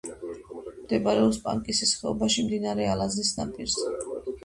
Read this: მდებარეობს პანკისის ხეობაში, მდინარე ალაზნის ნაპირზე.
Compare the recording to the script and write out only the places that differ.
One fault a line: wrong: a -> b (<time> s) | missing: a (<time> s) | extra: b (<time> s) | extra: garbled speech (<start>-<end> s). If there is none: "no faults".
no faults